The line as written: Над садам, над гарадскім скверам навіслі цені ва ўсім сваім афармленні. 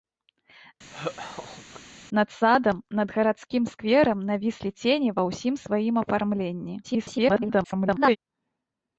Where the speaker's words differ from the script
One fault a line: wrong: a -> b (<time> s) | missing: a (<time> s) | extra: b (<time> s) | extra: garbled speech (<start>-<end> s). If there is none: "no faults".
extra: garbled speech (6.8-8.2 s)